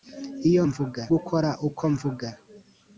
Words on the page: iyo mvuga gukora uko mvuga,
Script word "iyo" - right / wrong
right